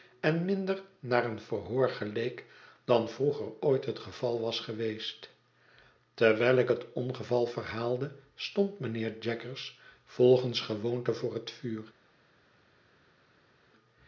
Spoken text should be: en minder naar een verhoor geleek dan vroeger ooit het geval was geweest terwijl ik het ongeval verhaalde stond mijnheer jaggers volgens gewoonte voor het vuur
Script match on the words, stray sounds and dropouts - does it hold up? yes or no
yes